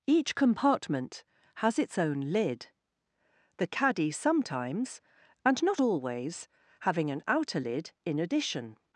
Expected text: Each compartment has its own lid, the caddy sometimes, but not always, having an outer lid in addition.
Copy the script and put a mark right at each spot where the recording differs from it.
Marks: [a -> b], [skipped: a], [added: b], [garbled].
Each compartment has its own lid, the caddy sometimes, [but -> and] not always, having an outer lid in addition.